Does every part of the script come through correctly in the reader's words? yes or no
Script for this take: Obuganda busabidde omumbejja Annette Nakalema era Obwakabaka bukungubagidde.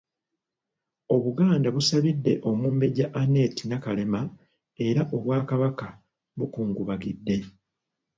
yes